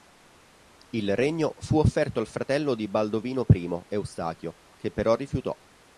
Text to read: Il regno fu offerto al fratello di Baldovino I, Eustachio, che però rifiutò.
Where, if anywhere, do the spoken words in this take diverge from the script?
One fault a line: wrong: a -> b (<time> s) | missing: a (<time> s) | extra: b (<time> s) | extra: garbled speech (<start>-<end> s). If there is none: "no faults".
no faults